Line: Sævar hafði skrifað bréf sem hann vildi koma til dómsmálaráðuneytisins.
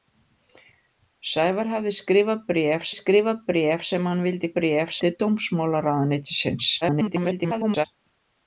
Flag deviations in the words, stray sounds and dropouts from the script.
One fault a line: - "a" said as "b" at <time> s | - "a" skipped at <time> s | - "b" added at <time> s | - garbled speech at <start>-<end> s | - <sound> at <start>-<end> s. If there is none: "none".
- "skrifað bréf" added at 3.0 s
- "koma" said as "bréf" at 4.6 s
- garbled speech at 6.8-7.9 s